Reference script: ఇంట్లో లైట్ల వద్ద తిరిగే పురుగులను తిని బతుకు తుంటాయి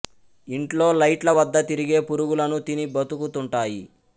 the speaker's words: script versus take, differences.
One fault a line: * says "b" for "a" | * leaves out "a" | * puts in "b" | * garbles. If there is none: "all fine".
all fine